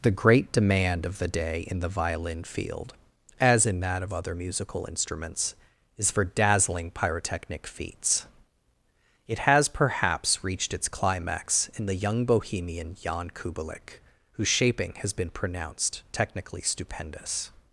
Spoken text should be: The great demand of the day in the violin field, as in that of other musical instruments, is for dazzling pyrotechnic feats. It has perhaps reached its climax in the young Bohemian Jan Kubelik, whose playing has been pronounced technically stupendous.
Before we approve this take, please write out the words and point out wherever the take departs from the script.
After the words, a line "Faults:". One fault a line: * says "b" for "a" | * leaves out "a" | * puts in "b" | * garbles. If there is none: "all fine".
The great demand of the day in the violin field, as in that of other musical instruments, is for dazzling pyrotechnic feats. It has perhaps reached its climax in the young Bohemian Jan Kubelik, whose shaping has been pronounced technically stupendous.
Faults:
* says "shaping" for "playing"